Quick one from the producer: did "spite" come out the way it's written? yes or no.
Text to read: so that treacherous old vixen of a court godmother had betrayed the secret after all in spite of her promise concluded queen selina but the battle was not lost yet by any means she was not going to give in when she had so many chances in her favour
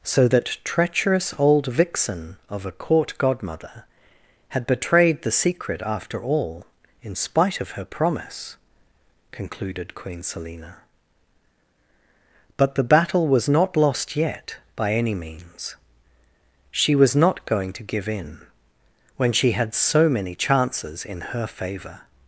yes